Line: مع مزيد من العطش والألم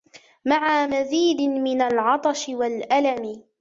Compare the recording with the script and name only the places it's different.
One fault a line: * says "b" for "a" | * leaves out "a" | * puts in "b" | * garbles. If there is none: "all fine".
all fine